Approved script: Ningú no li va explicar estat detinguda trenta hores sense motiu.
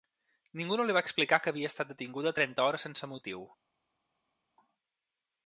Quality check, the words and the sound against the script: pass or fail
fail